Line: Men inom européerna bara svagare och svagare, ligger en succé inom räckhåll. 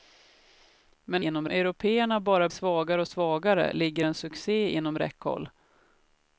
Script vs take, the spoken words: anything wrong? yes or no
no